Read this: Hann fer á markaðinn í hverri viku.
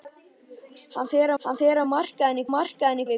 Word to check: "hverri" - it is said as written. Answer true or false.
false